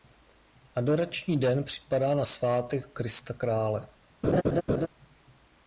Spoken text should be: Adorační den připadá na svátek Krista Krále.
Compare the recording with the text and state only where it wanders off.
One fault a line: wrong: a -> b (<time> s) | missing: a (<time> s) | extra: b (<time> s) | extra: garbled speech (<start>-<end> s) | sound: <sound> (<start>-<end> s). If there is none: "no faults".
sound: laugh (4.2-4.9 s)